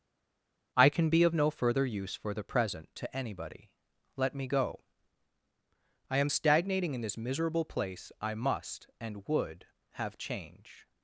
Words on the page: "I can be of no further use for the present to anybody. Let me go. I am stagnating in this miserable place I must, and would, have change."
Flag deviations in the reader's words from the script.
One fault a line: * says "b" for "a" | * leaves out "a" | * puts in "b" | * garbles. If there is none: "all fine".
all fine